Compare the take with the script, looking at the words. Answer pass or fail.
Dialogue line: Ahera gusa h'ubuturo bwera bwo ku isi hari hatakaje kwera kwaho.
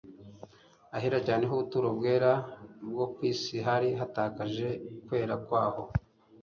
fail